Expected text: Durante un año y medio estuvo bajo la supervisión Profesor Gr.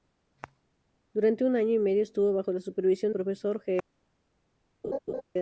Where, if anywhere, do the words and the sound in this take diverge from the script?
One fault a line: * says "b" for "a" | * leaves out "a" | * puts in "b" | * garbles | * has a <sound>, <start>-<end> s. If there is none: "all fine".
* has a laugh, 4.8-5.2 s